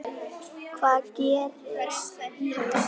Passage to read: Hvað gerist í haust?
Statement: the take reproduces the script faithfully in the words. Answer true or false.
true